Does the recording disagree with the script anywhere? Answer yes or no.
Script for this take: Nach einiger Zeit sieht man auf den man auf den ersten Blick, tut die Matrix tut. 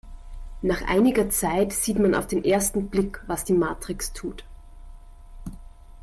yes